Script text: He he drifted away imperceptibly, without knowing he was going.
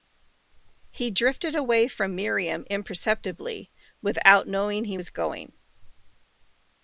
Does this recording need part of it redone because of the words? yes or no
yes